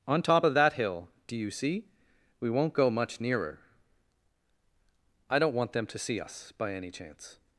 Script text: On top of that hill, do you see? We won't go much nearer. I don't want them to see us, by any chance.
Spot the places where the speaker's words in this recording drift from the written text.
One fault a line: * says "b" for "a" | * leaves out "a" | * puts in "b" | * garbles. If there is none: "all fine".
all fine